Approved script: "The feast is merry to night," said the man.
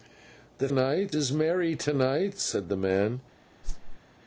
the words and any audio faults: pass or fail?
fail